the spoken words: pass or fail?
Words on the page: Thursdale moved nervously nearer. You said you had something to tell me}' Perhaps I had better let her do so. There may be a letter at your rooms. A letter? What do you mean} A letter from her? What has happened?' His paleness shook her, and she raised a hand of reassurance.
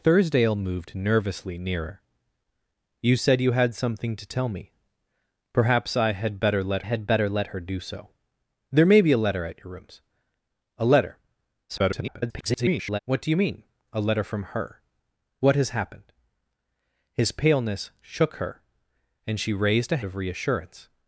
fail